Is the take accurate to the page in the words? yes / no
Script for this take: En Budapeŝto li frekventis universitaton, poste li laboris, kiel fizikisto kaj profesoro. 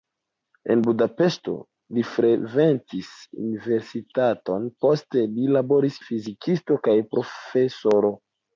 no